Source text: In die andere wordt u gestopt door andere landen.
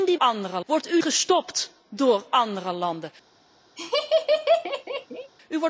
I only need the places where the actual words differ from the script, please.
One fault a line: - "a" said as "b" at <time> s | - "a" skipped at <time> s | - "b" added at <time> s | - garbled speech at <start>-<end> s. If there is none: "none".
none